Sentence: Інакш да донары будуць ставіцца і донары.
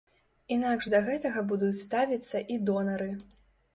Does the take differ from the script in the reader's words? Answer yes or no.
yes